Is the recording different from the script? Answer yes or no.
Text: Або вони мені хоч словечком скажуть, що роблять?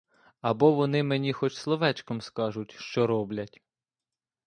no